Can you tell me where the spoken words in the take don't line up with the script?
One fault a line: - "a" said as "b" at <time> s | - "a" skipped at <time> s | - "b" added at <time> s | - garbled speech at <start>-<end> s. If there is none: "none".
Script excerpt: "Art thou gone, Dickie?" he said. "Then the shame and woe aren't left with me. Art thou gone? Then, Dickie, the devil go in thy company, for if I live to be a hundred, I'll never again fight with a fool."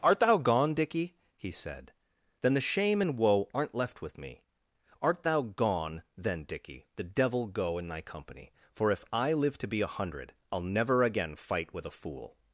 none